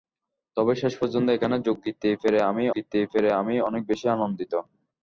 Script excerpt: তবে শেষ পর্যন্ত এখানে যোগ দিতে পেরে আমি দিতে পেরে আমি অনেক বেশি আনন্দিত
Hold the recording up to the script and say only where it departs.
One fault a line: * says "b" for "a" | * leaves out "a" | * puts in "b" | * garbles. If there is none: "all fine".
all fine